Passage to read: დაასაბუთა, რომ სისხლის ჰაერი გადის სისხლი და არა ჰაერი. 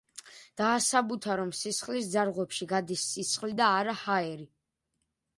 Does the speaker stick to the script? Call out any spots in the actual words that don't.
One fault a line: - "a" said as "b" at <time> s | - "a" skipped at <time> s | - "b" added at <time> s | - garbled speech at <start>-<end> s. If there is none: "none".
- "ჰაერი" said as "ძარღვებში" at 2.1 s